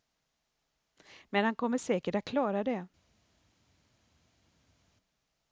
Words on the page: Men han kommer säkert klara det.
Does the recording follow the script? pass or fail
fail